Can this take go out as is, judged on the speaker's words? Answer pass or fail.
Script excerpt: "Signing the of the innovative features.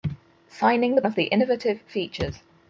pass